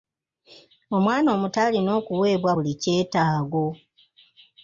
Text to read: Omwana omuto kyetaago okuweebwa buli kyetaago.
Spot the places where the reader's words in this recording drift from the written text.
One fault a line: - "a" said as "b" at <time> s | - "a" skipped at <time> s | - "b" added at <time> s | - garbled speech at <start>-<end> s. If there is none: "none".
- "kyetaago" said as "alina" at 1.6 s